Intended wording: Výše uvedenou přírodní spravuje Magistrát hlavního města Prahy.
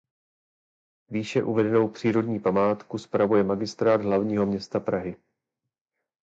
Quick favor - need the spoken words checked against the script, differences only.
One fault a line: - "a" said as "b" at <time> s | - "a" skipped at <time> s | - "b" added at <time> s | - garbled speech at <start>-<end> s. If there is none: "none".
- "památku" added at 2.4 s